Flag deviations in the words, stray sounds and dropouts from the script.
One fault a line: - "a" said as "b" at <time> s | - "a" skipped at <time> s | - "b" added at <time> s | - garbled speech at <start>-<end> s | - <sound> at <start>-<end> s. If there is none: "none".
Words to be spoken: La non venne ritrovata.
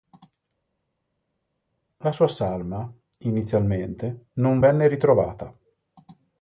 - "sua salma inizialmente" added at 2.1 s